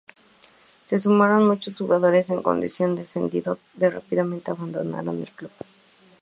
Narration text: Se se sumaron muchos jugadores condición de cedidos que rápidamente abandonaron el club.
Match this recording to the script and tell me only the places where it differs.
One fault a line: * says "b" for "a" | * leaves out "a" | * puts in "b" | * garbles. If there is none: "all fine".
* leaves out "se"
* puts in "en"